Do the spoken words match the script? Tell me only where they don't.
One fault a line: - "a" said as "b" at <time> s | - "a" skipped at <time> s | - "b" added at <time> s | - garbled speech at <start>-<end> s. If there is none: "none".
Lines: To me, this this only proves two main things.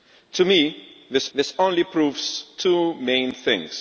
none